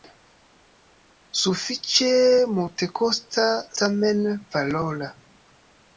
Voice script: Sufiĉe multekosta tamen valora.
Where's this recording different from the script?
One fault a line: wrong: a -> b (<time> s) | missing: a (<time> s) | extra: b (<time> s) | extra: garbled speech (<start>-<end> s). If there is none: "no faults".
no faults